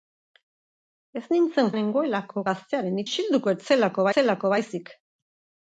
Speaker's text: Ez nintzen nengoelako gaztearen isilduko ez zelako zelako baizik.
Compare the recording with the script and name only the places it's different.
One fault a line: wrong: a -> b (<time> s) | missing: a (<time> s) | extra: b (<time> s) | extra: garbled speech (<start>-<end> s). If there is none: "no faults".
no faults